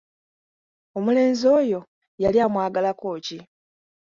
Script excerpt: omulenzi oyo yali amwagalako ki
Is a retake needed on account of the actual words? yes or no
no